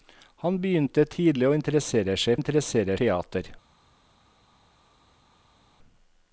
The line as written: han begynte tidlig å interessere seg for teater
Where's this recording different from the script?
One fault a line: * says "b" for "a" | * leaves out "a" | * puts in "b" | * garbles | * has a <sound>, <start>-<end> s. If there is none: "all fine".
* says "interessere" for "for"